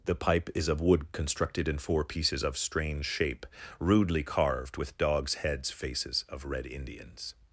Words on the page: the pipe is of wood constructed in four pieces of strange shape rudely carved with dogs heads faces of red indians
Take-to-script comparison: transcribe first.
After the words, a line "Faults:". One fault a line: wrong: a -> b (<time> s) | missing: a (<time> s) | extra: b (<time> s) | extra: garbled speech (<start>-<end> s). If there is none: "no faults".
the pipe is of wood constructed in four pieces of strange shape rudely carved with dogs heads faces of red indians
Faults:
no faults